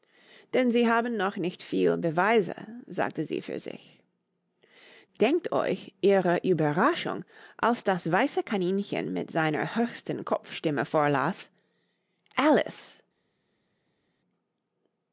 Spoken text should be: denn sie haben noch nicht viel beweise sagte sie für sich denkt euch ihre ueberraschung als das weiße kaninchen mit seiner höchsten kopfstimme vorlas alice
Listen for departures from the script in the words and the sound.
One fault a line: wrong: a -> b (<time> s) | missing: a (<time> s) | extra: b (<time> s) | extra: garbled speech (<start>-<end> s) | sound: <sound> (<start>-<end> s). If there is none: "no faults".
no faults